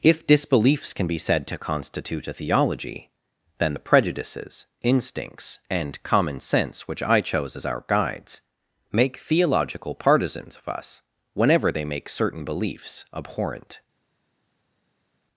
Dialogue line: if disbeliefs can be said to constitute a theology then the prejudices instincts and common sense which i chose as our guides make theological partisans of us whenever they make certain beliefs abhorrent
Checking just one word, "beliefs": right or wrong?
right